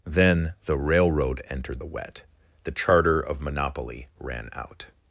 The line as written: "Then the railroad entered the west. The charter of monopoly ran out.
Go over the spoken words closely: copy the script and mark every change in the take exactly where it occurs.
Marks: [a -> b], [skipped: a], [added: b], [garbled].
"Then the railroad entered the [west. -> wet] The charter of monopoly ran out.